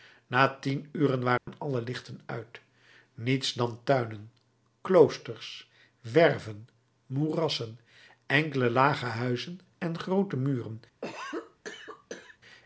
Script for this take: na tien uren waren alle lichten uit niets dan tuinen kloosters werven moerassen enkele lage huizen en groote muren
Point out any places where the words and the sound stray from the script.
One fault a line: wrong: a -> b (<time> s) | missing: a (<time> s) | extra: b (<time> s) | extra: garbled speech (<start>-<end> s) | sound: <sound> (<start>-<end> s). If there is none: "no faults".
sound: dropout (1.4-1.5 s)
sound: cough (11.0-12.4 s)